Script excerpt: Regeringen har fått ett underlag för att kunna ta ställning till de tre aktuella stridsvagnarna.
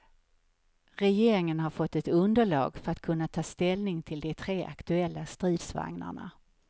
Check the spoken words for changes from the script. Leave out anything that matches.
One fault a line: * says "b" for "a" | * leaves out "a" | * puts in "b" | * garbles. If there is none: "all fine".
all fine